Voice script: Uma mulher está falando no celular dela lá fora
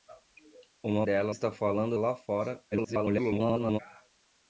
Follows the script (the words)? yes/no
no